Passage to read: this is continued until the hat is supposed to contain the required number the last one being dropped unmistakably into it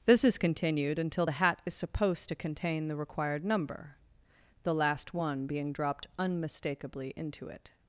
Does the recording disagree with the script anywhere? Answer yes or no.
no